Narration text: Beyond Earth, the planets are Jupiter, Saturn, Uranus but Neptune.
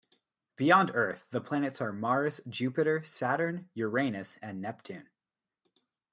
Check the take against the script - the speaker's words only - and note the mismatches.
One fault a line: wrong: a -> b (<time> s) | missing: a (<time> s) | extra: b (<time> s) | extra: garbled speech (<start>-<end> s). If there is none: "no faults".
extra: Mars (1.9 s)
wrong: but -> and (4.4 s)